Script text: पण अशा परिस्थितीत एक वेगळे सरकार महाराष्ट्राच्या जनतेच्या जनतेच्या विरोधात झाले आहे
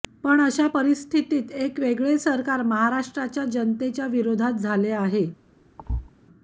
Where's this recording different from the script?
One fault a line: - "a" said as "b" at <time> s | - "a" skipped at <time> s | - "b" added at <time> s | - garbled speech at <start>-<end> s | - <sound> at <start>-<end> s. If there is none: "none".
- "जनतेच्या" skipped at 4.1 s
- thud at 5.8-6.1 s